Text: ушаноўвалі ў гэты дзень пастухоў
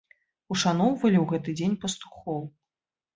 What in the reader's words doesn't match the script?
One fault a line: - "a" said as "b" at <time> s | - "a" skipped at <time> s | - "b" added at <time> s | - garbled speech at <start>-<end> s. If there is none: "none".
none